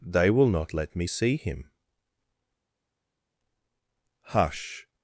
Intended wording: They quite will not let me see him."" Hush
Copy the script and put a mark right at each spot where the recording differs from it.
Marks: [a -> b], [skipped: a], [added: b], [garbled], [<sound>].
They [skipped: quite] will not let me see him."" Hush